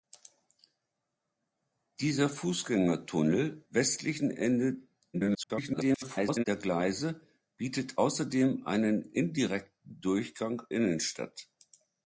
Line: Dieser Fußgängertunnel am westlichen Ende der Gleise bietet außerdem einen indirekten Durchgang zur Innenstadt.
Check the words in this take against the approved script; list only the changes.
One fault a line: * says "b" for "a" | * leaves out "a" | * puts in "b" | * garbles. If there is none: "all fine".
* leaves out "am"
* garbles
* leaves out "zur"